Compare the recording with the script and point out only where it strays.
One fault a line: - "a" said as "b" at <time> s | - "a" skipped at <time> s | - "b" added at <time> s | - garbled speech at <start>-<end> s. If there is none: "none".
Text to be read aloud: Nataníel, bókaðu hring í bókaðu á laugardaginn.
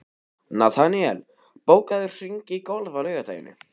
- "bókaðu" said as "golf" at 2.7 s